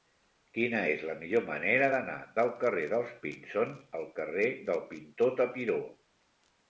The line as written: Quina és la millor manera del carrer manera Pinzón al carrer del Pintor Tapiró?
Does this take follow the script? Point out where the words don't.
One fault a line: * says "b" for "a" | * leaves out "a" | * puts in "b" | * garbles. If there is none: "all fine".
* puts in "d'anar"
* says "dels" for "manera"